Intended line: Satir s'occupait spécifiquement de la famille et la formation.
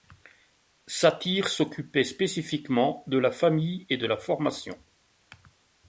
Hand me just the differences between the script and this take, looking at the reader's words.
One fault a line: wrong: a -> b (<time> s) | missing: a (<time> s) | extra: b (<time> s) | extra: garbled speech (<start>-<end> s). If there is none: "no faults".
extra: de (4.0 s)